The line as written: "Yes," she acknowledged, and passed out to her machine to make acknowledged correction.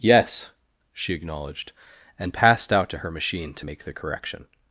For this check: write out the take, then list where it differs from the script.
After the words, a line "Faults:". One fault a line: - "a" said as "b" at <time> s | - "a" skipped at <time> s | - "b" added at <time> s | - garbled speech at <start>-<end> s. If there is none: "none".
"Yes," she acknowledged, and passed out to her machine to make the correction.
Faults:
- "acknowledged" said as "the" at 3.8 s